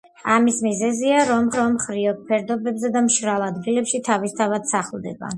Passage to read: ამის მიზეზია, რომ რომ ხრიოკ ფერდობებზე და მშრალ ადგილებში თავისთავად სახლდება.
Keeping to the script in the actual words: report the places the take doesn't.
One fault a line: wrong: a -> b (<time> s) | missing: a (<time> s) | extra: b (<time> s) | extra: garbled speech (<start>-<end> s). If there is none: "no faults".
no faults